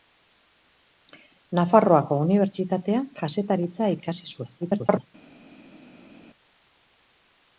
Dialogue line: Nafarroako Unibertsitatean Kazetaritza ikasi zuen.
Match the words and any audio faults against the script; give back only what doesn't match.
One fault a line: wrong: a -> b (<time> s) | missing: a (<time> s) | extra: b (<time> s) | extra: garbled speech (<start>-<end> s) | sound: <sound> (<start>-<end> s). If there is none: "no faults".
extra: garbled speech (4.6-5.1 s)